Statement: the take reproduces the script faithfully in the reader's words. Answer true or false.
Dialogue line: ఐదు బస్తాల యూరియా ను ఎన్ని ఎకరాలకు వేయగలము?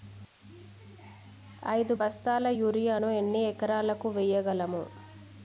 true